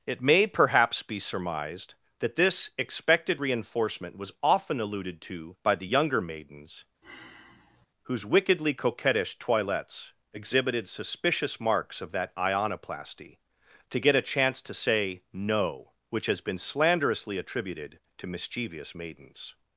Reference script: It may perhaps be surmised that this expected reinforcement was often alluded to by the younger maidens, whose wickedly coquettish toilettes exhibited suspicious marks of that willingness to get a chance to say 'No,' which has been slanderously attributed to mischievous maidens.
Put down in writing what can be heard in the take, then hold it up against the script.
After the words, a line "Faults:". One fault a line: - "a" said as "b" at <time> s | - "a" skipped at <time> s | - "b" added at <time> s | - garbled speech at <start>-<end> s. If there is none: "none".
It may perhaps be surmised that this expected reinforcement was often alluded to by the younger maidens, whose wickedly coquettish toilettes exhibited suspicious marks of that ionoplasty to get a chance to say 'No,' which has been slanderously attributed to mischievous maidens.
Faults:
- "willingness" said as "ionoplasty" at 12.4 s